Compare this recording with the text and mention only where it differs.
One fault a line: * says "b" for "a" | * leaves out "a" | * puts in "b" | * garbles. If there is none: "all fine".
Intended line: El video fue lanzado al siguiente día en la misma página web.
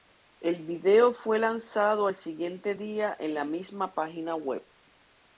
all fine